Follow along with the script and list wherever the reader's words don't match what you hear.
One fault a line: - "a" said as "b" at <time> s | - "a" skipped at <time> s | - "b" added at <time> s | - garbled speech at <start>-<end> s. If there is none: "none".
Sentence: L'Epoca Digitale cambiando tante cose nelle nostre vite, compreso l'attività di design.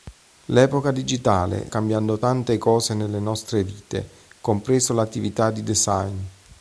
none